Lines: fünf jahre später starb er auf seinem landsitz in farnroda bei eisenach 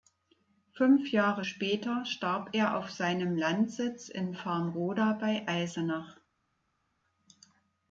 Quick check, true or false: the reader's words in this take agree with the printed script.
true